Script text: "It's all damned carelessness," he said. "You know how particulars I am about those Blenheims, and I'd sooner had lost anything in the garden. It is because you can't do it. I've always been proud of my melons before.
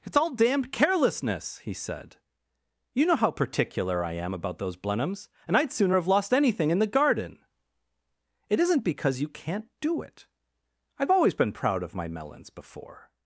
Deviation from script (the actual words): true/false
true